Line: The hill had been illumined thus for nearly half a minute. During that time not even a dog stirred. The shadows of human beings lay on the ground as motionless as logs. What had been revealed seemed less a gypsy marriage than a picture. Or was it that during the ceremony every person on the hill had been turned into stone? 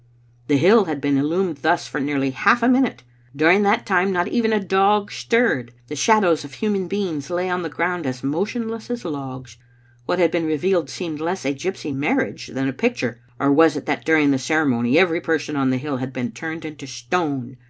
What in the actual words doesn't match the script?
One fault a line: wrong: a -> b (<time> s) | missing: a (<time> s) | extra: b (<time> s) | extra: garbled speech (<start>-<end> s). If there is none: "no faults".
no faults